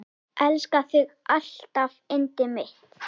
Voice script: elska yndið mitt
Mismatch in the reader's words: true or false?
true